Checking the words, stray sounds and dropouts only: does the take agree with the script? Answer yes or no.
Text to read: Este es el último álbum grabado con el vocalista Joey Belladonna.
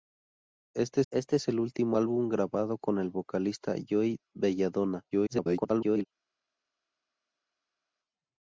no